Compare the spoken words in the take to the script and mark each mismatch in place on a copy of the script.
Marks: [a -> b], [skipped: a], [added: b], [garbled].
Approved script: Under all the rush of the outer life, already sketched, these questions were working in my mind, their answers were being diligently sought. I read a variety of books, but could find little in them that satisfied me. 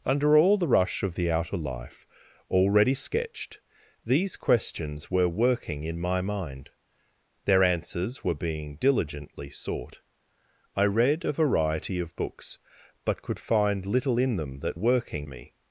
Under all the rush of the outer life, already sketched, these questions were working in my mind, their answers were being diligently sought. I read a variety of books, but could find little in them that [satisfied -> working] me.